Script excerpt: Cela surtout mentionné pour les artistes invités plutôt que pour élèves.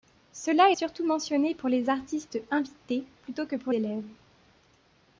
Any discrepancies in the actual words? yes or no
no